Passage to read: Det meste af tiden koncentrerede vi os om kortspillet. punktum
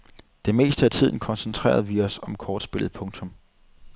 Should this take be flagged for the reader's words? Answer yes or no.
no